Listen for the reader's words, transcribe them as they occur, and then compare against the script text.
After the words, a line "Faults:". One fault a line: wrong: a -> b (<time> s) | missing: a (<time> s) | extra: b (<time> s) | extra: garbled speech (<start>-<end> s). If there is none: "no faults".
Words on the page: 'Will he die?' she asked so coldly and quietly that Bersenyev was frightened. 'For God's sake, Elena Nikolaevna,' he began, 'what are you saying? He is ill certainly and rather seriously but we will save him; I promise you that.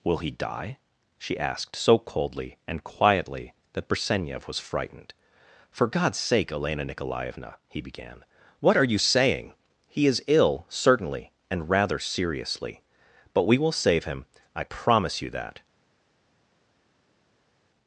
'Will he die?' she asked so coldly and quietly that Bersenyev was frightened. 'For God's sake, Elena Nikolaevna,' he began, 'what are you saying? He is ill certainly and rather seriously but we will save him; I promise you that.
Faults:
no faults